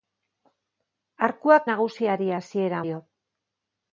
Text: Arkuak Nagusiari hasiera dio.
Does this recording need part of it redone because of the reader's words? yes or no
no